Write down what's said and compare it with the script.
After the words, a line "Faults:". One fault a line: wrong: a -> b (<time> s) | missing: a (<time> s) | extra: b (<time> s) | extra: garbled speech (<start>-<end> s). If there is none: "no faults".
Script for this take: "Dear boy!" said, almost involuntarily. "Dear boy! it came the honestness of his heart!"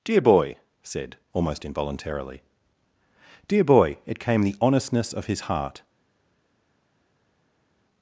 "Dear boy!" said, almost involuntarily. "Dear boy! it came the honestness of his heart!"
Faults:
no faults